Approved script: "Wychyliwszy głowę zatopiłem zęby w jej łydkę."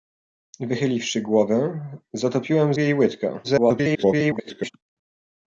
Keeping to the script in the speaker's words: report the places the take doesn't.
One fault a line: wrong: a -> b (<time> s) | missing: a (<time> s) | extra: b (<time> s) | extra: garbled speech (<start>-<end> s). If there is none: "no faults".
missing: zęby (2.7 s)
extra: garbled speech (3.4-4.7 s)